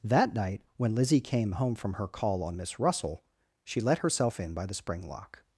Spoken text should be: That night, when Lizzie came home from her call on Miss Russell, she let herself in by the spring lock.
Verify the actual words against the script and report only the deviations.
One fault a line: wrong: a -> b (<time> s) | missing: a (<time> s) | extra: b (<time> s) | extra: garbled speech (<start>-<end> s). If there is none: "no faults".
no faults